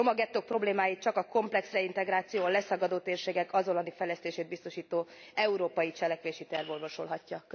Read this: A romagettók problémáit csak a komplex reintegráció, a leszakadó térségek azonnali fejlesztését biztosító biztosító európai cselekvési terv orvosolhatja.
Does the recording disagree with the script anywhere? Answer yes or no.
yes